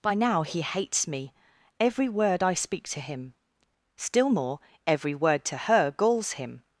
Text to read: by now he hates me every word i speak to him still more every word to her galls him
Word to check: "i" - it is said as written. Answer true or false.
true